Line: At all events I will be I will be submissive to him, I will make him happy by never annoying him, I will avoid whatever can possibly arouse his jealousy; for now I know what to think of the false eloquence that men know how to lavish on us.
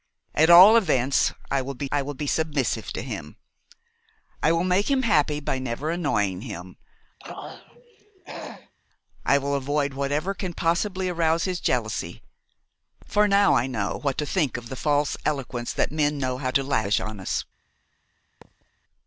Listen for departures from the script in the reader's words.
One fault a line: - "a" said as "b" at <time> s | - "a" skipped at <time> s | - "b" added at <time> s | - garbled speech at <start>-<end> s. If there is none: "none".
none